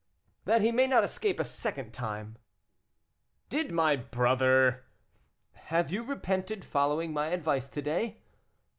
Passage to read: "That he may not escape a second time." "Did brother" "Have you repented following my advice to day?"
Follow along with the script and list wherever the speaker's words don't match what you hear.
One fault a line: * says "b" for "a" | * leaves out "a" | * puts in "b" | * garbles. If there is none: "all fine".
* puts in "my"